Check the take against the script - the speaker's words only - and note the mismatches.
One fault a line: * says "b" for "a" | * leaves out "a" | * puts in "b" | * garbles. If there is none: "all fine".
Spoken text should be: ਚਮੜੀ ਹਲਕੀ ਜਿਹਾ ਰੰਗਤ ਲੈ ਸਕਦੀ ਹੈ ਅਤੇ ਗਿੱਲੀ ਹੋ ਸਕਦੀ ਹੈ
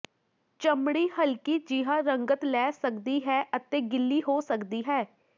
all fine